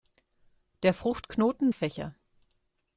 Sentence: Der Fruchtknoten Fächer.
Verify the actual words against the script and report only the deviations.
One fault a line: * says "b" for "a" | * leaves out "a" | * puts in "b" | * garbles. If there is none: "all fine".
all fine